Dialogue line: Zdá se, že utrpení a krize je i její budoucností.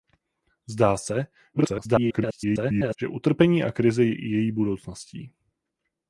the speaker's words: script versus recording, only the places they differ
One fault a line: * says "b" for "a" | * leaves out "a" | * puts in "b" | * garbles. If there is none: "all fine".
* garbles